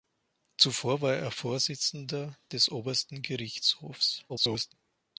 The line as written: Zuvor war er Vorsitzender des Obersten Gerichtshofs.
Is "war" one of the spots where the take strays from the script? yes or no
no